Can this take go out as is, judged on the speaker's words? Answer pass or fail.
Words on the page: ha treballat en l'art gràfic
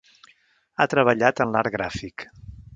pass